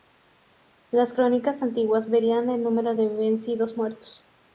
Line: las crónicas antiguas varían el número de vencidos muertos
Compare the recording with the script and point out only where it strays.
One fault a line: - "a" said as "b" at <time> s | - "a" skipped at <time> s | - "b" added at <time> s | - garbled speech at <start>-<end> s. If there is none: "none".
none